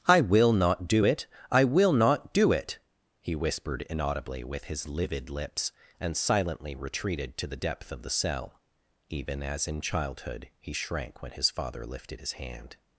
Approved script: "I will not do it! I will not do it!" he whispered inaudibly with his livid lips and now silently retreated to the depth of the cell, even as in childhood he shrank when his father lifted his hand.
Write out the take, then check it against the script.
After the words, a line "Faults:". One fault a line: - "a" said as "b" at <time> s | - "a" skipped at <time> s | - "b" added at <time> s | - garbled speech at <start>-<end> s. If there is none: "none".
"I will not do it! I will not do it!" he whispered inaudibly with his livid lips and silently retreated to the depth of the cell, even as in childhood he shrank when his father lifted his hand.
Faults:
- "now" skipped at 6.2 s